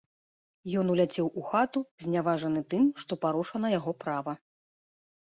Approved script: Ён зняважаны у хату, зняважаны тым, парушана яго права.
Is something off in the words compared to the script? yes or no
yes